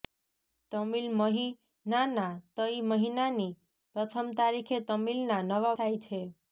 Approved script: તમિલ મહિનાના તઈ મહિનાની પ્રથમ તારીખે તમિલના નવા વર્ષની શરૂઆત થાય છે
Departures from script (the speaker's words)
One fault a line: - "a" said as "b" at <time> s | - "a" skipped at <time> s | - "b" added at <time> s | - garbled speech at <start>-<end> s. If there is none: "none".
- "વર્ષની શરૂઆત" skipped at 5.8 s